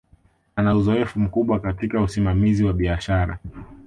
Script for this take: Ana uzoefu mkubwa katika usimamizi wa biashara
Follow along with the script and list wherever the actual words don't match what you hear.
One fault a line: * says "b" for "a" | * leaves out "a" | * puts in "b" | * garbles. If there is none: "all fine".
all fine